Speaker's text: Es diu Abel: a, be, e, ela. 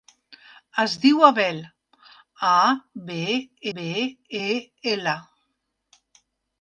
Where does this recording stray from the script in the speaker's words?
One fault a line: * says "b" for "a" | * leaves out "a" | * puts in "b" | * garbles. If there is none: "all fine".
* puts in "be"